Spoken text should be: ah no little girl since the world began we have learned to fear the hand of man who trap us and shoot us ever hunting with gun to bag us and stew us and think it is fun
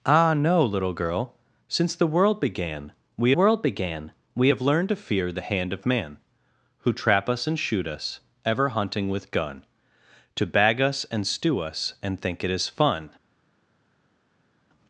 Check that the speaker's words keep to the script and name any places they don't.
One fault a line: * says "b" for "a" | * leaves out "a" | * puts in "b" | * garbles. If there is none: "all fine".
* puts in "world began we"